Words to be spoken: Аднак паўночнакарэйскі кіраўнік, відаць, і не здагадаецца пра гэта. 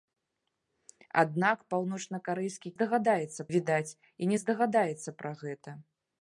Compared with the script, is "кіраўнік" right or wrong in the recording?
wrong